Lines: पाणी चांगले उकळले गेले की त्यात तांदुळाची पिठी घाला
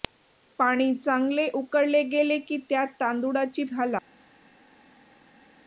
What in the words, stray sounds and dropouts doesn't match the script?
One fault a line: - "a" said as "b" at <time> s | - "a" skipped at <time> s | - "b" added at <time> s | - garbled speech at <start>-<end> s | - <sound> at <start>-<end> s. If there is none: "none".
- "पिठी" skipped at 3.6 s